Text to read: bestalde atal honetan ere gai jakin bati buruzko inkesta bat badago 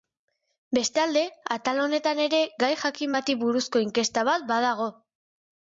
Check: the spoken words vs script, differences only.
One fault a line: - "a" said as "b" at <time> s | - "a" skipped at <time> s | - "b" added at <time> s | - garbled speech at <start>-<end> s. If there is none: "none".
none